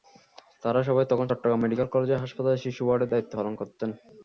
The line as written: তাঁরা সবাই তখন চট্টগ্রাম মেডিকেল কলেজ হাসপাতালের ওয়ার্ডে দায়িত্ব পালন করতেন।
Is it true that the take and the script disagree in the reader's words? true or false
true